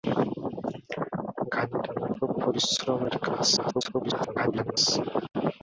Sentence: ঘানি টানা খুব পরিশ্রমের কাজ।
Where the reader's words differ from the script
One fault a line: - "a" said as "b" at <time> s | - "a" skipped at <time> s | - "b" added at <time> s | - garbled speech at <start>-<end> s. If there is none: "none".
- garbled speech at 3.6-4.8 s